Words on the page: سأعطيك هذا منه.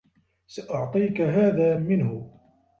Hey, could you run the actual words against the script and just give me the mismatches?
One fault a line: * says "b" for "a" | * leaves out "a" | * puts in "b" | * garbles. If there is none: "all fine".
all fine